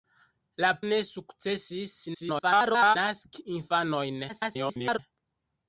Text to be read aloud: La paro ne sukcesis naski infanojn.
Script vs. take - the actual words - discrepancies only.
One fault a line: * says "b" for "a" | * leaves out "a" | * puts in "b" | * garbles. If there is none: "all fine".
* leaves out "paro"
* garbles
* garbles